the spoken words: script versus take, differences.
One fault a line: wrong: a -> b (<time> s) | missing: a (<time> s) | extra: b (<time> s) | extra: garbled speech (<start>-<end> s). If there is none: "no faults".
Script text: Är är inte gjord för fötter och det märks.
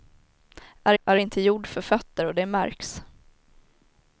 no faults